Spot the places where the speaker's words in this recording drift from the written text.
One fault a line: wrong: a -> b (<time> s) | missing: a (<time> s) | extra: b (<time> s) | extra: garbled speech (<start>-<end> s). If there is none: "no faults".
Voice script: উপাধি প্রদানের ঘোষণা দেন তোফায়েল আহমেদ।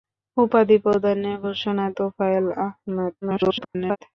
missing: দেন (1.9 s)
extra: garbled speech (3.2-4.0 s)